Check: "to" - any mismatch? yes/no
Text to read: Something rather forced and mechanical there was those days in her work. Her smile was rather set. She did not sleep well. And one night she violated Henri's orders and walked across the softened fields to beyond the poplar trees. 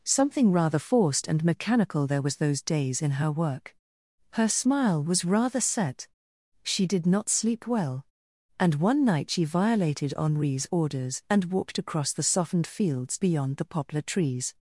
yes